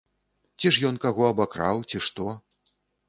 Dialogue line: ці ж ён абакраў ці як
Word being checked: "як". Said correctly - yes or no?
no